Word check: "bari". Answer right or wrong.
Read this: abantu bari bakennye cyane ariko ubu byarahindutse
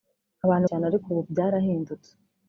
wrong